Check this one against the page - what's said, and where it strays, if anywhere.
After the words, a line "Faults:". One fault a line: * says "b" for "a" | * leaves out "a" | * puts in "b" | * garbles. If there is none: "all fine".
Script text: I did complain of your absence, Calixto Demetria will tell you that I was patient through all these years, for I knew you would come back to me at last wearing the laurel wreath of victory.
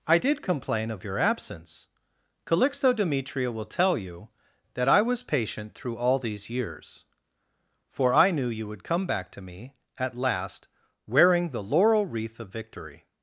I did complain of your absence, Calixto Demetria will tell you that I was patient through all these years, for I knew you would come back to me at last wearing the laurel wreath of victory.
Faults:
all fine